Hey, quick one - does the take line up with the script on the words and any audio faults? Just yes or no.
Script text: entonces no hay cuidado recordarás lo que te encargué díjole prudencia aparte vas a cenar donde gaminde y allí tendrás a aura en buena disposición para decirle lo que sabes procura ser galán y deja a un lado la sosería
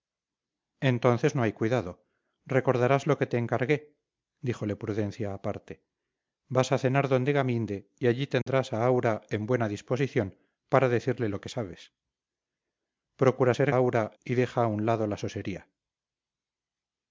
no